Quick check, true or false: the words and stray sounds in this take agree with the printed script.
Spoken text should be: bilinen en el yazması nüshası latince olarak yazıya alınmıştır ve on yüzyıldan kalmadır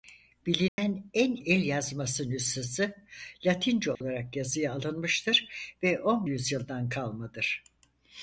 false